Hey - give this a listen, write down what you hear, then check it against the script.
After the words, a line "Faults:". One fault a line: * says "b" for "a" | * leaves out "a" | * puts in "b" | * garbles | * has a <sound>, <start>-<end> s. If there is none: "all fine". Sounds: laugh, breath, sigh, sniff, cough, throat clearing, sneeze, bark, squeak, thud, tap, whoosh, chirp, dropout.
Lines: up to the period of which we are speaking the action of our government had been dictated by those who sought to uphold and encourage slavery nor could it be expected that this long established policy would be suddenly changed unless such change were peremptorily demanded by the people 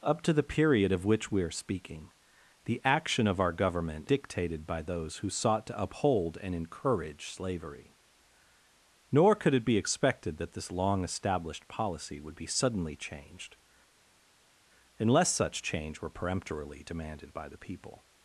up to the period of which we are speaking the action of our government dictated by those who sought to uphold and encourage slavery nor could it be expected that this long established policy would be suddenly changed unless such change were peremptorily demanded by the people
Faults:
* leaves out "had been"